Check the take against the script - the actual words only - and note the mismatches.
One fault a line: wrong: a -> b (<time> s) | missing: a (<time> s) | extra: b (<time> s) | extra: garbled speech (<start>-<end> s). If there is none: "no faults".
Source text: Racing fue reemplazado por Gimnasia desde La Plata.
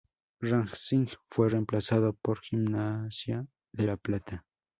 wrong: desde -> de (3.7 s)